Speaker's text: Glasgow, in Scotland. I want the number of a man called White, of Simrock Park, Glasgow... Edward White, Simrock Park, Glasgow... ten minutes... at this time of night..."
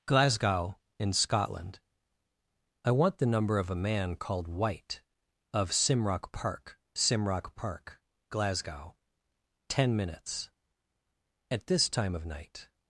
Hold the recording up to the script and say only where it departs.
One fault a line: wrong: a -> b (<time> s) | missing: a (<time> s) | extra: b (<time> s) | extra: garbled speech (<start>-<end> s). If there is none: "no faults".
missing: Glasgow Edward White (6.8 s)